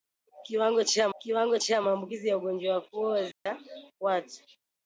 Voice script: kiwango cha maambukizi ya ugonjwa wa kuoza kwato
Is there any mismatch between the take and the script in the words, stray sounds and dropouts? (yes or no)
yes